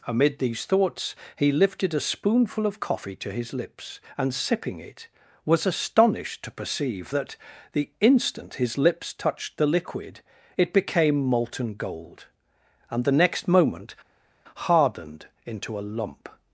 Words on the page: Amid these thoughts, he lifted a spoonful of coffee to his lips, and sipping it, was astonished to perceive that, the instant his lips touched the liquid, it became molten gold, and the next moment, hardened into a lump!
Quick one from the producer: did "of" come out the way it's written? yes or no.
yes